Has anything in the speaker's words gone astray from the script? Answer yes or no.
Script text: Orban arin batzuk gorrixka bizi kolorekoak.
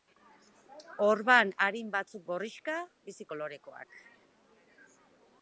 no